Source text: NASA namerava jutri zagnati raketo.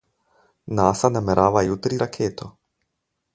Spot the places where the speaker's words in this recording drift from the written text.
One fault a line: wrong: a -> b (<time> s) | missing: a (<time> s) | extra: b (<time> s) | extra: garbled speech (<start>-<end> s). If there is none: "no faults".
missing: zagnati (2.0 s)